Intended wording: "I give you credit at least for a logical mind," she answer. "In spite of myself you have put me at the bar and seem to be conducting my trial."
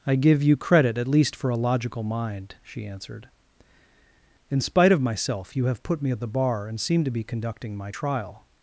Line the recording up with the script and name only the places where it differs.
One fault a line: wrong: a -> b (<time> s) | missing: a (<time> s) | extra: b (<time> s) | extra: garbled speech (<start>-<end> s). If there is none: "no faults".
wrong: answer -> answered (2.9 s)